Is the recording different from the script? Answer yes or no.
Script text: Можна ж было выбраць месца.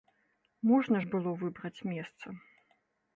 no